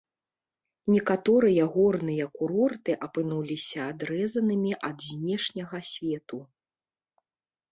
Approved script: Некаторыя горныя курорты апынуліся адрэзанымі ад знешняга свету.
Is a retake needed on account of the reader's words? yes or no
no